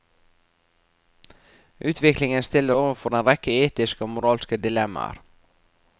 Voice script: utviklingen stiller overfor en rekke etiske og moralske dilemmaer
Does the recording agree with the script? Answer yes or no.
yes